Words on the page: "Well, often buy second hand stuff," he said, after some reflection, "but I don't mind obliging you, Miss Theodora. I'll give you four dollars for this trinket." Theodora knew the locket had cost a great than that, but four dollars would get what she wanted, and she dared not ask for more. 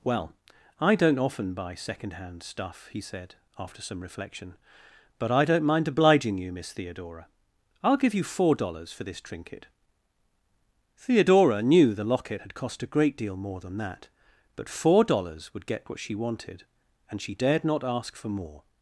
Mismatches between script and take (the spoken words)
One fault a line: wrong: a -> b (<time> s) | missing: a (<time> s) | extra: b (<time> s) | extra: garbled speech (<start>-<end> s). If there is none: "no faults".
extra: I don't (0.8 s)
extra: deal more (13.2 s)